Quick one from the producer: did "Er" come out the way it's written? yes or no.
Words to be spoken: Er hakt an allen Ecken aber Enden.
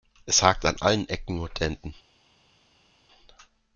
no